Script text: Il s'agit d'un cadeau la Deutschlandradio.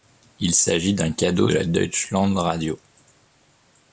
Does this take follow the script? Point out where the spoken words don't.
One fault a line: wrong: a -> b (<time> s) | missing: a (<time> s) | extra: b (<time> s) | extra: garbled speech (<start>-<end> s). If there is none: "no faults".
no faults